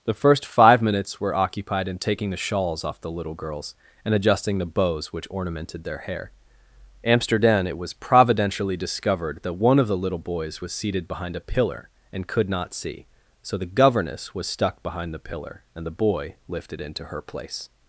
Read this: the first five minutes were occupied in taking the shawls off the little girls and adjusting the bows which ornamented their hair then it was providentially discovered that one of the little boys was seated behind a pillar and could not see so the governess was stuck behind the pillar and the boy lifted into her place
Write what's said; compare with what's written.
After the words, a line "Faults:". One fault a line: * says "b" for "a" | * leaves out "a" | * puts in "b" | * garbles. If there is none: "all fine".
the first five minutes were occupied in taking the shawls off the little girls and adjusting the bows which ornamented their hair amsterdam it was providentially discovered that one of the little boys was seated behind a pillar and could not see so the governess was stuck behind the pillar and the boy lifted into her place
Faults:
* says "amsterdam" for "then"